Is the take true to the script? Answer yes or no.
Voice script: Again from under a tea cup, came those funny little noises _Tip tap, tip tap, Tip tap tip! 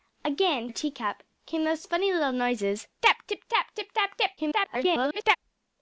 no